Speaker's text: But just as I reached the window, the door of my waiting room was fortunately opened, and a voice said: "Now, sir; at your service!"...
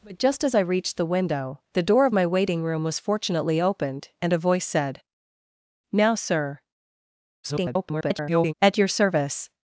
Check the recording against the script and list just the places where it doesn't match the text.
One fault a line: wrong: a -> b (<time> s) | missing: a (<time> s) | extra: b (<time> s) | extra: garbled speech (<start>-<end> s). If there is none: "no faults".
extra: garbled speech (7.4-8.5 s)